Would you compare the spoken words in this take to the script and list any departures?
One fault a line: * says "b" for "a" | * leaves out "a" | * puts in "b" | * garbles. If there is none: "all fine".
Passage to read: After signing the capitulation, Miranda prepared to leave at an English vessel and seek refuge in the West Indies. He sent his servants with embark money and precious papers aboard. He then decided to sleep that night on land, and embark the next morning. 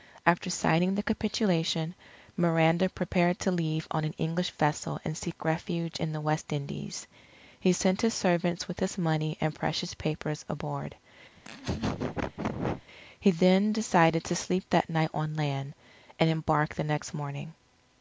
* says "on" for "at"
* says "his" for "embark"